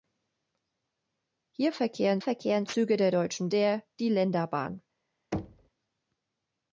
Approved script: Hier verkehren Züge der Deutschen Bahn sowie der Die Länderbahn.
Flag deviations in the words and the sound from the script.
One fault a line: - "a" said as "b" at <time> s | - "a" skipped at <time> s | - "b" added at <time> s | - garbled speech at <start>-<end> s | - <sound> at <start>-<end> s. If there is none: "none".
- "verkehren" added at 2.2 s
- "Bahn sowie" skipped at 3.5 s
- thud at 5.3-5.7 s